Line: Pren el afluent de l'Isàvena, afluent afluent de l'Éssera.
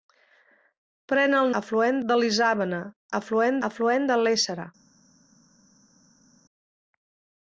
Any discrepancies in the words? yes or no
no